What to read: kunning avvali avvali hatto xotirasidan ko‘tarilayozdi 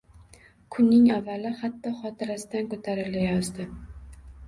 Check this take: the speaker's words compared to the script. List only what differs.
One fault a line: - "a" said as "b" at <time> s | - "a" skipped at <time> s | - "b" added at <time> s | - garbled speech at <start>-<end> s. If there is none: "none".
- "avvali" skipped at 1.5 s